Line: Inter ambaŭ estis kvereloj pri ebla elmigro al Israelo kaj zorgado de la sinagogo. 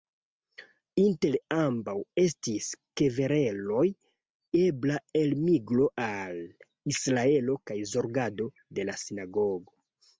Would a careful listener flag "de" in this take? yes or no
no